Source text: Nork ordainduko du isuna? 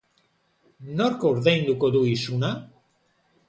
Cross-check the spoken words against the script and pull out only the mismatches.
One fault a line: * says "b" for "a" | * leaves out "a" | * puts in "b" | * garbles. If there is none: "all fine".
all fine